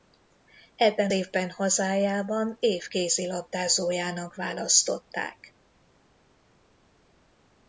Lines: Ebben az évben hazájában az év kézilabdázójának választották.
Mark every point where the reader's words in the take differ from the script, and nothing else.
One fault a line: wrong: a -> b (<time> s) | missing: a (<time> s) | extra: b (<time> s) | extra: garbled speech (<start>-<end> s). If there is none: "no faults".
missing: az (1.1 s)
missing: az (2.6 s)